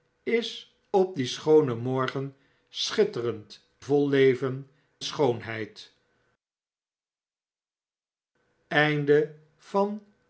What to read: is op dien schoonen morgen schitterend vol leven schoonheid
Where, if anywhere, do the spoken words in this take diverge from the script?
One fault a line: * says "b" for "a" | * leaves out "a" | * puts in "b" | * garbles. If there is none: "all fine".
all fine